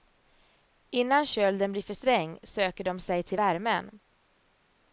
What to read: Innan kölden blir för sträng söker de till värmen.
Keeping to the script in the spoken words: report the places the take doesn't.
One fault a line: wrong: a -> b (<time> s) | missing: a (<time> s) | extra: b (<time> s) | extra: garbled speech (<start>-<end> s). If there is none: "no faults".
extra: sig (3.0 s)